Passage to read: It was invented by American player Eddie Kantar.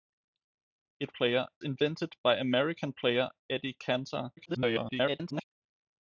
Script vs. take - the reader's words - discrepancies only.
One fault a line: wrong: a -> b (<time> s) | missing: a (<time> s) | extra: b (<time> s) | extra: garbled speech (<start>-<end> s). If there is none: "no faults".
wrong: was -> player (1.1 s)
extra: garbled speech (4.4-5.4 s)